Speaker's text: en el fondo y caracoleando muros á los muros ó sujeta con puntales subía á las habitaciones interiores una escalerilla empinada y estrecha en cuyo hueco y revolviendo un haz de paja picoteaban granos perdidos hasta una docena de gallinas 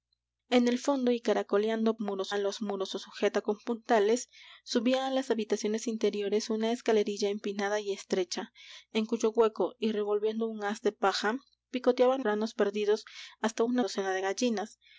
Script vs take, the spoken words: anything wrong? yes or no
no